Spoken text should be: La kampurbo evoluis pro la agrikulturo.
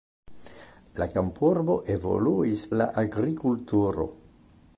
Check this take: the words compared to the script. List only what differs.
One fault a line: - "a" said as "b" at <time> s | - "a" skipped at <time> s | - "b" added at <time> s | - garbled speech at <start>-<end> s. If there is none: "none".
- "pro" skipped at 2.7 s